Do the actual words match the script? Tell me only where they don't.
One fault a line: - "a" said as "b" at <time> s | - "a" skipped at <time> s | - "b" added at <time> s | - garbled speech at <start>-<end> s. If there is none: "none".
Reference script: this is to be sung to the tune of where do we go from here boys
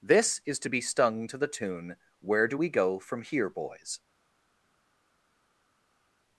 - "sung" said as "stung" at 0.8 s
- "of" skipped at 1.9 s